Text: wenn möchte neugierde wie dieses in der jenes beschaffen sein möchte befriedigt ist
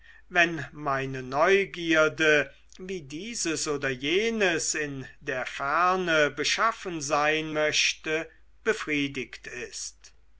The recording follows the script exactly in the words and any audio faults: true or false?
false